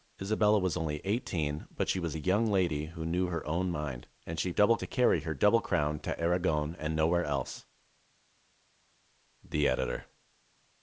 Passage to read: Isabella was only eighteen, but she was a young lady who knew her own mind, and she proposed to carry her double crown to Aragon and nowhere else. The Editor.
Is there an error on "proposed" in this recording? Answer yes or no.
yes